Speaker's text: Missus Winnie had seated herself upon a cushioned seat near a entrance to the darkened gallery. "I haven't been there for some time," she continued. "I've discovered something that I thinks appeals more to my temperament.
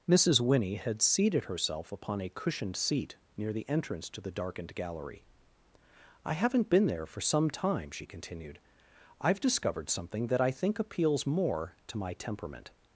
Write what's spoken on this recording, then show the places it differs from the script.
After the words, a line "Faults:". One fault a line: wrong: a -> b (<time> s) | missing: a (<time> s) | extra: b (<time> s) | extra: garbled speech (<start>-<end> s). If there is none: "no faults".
Missus Winnie had seated herself upon a cushioned seat near the entrance to the darkened gallery. "I haven't been there for some time," she continued. "I've discovered something that I think appeals more to my temperament.
Faults:
wrong: a -> the (3.5 s)
wrong: thinks -> think (10.5 s)